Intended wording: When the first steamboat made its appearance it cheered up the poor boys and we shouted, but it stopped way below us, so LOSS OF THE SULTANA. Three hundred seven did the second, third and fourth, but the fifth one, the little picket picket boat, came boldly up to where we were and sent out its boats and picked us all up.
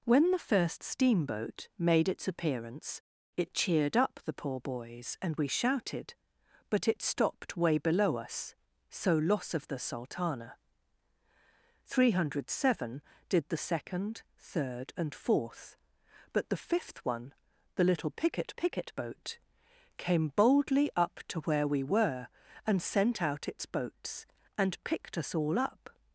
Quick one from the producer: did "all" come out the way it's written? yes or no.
yes